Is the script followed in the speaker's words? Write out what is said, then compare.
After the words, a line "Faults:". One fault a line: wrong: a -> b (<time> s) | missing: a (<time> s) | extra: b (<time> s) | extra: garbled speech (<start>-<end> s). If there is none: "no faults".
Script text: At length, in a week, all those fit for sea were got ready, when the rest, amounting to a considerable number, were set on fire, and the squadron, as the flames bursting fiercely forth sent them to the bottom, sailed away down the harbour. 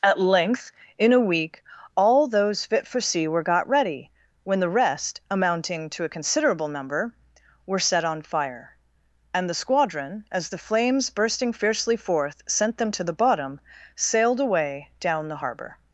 At length, in a week, all those fit for sea were got ready, when the rest, amounting to a considerable number, were set on fire, and the squadron, as the flames bursting fiercely forth sent them to the bottom, sailed away down the harbour.
Faults:
no faults